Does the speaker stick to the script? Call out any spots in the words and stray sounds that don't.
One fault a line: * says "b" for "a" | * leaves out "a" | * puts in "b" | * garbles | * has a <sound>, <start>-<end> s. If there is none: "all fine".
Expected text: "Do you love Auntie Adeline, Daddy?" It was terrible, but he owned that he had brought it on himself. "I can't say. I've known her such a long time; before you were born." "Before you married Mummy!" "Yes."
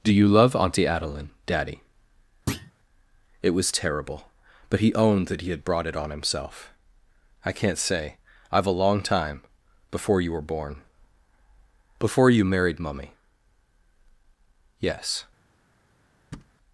* has a thud, 2.5-2.7 s
* leaves out "known her such"
* has a thud, 16.3-16.5 s